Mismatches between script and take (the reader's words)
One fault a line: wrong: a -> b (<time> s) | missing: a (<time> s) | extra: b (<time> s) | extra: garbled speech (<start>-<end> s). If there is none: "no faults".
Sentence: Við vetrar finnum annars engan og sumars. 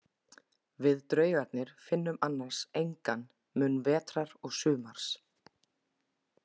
wrong: vetrar -> draugarnir (1.1 s)
extra: mun vetrar (3.6 s)